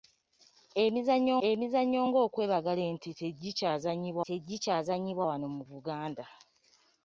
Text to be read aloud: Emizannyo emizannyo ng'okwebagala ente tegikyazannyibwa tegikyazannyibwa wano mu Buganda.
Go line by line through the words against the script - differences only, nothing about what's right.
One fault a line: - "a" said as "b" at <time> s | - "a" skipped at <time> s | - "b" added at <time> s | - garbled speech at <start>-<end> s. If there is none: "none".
none